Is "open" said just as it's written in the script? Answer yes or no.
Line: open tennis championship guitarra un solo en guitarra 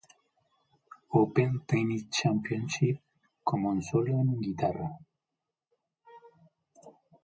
yes